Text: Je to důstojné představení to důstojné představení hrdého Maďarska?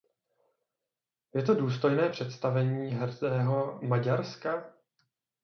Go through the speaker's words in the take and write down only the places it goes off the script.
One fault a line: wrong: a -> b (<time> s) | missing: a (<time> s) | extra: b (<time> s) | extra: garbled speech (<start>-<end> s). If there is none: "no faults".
missing: to důstojné představení (2.9 s)